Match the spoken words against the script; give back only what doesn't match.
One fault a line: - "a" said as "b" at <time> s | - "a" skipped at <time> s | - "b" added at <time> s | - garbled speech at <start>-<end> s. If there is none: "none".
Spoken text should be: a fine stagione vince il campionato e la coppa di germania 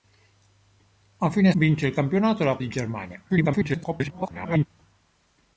- "stagione" skipped at 1.5 s
- "coppa" skipped at 2.6 s
- garbled speech at 3.3-4.7 s